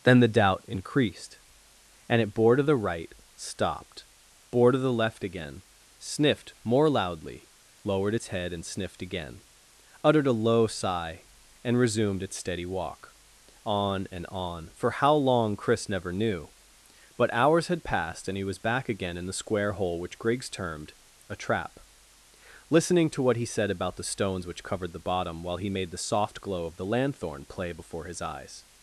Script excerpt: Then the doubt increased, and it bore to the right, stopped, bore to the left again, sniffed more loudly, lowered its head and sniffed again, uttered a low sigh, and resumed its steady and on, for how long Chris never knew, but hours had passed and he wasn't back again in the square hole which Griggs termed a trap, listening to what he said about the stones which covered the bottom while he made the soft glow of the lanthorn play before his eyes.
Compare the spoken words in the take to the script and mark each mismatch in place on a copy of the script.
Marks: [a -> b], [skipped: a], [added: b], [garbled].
Then the doubt increased, and it bore to the right, stopped, bore to the left again, sniffed more loudly, lowered its head and sniffed again, uttered a low sigh, and resumed its steady [added: walk on] and on, for how long Chris never knew, but hours had passed and he [wasn't -> was] back again in the square hole which Griggs termed a trap, listening to what he said about the stones which covered the bottom while he made the soft glow of the lanthorn play before his eyes.